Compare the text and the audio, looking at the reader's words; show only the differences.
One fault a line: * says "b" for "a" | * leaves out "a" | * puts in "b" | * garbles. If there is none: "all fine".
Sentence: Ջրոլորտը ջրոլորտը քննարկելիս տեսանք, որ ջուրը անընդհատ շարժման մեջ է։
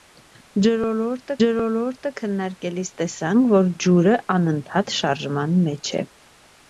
all fine